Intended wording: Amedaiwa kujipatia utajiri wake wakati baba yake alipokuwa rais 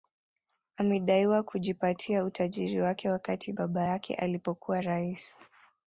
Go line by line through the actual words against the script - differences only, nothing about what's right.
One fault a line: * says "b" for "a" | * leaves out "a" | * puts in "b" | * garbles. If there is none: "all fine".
all fine